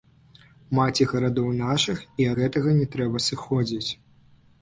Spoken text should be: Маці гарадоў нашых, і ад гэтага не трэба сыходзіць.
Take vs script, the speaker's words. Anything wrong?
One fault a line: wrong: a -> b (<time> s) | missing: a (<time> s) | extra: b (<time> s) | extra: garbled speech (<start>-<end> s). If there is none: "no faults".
missing: ад (2.3 s)